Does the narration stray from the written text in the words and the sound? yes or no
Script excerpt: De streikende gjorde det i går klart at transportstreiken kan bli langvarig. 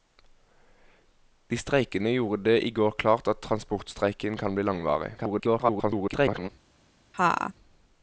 yes